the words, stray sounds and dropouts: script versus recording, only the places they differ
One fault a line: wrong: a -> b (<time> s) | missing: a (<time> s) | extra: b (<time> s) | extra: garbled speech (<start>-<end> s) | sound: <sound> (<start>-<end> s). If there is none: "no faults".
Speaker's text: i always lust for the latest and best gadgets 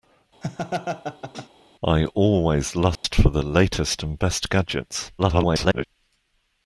sound: laugh (0.4-1.5 s)
sound: dropout (2.9-3.0 s)
extra: garbled speech (5.2-5.9 s)